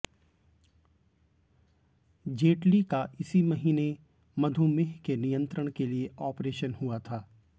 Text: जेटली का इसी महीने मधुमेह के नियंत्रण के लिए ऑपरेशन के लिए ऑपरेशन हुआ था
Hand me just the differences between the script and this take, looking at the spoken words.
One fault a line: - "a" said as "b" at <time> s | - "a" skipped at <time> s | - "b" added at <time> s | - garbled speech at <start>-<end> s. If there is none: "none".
- "के लिए ऑपरेशन" skipped at 6.7 s